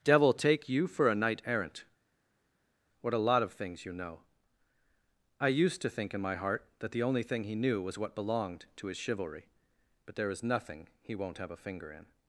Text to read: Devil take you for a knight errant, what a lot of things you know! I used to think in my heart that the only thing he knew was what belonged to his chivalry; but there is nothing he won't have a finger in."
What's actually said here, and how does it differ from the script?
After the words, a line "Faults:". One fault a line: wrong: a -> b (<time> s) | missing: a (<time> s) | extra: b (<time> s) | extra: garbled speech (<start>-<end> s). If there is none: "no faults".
Devil take you for a knight errant, what a lot of things you know! I used to think in my heart that the only thing he knew was what belonged to his chivalry; but there is nothing he won't have a finger in."
Faults:
no faults